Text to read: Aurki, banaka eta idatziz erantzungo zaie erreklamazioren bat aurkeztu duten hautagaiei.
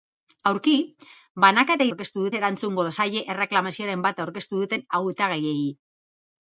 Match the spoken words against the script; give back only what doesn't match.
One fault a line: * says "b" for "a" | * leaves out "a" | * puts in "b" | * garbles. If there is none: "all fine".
* says "aurkeztu" for "idatziz"